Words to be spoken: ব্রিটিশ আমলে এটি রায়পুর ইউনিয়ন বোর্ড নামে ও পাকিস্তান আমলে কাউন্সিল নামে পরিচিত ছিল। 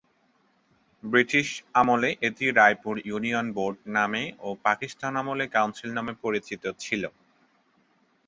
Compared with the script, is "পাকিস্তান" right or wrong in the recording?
right